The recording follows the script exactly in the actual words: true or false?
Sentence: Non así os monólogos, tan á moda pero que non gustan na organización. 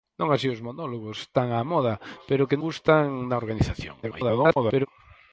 false